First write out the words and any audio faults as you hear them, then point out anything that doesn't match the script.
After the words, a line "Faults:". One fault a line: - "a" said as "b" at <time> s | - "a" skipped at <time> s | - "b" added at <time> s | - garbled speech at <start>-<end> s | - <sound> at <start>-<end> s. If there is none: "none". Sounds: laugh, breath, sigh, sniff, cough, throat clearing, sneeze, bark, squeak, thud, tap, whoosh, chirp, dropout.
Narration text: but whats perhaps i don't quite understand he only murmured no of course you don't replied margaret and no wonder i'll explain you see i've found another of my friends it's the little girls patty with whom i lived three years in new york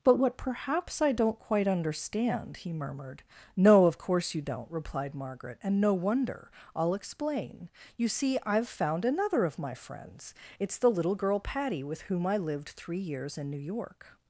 but what perhaps i don't quite understand he murmured no of course you don't replied margaret and no wonder i'll explain you see i've found another of my friends it's the little girl patty with whom i lived three years in new york
Faults:
- "whats" said as "what" at 0.2 s
- "only" skipped at 2.7 s
- "girls" said as "girl" at 11.2 s